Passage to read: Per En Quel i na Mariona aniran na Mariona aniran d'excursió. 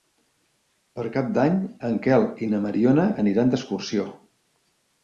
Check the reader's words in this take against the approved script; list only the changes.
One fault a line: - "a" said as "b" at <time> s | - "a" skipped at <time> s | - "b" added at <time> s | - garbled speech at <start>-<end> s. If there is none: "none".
- "Cap d'Any" added at 1.2 s
- "na Mariona aniran" skipped at 3.5 s